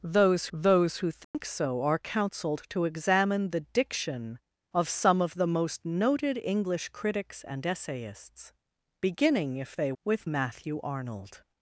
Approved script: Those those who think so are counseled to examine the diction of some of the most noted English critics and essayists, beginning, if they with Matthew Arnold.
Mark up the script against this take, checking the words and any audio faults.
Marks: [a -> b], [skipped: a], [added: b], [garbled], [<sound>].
Those those who think [dropout] so are counseled to examine the diction of some of the most noted English critics and essayists, beginning, if they with Matthew Arnold.